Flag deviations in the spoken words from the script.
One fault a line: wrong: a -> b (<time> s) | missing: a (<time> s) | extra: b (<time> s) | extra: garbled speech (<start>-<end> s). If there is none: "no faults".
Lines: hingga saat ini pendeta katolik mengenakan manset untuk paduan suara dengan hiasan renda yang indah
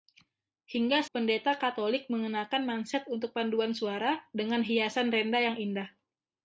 missing: saat ini (1.1 s)